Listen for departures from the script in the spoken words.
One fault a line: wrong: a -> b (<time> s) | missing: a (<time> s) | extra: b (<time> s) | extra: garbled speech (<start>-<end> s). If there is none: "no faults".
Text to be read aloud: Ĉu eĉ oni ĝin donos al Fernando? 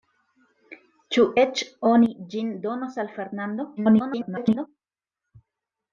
extra: garbled speech (3.8-4.7 s)